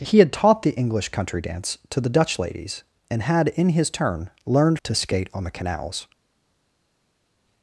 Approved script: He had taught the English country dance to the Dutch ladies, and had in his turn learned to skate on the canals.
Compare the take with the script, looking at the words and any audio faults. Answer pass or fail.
pass